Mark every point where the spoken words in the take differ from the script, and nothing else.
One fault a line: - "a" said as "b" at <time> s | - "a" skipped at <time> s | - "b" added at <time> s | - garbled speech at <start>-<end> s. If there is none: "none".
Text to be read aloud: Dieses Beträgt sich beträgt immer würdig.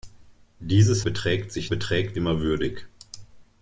none